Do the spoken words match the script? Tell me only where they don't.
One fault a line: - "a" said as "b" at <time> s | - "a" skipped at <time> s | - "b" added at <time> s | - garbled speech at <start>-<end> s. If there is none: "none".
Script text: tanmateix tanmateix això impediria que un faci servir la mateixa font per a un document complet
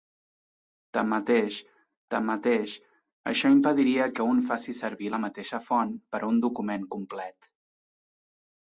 none